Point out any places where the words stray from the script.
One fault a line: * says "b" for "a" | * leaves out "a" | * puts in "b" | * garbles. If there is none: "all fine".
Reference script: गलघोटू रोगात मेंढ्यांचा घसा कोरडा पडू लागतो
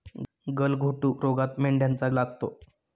* leaves out "घसा कोरडा पडू"